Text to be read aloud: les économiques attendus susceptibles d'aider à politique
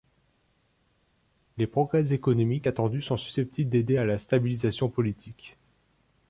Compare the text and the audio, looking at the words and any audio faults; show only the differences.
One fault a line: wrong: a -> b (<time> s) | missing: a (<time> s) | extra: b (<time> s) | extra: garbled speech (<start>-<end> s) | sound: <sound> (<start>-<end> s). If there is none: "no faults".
extra: progrès (1.7 s)
extra: sont (3.0 s)
extra: la stabilisation (4.0 s)